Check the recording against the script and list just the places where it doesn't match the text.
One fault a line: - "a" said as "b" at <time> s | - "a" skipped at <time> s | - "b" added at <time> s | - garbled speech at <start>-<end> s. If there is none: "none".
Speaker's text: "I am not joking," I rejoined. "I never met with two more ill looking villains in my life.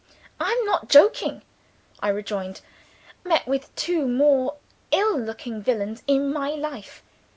- "I never" skipped at 2.6 s